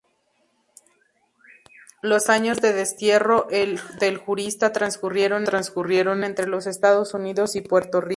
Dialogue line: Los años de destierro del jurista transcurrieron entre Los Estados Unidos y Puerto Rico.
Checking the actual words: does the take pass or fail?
fail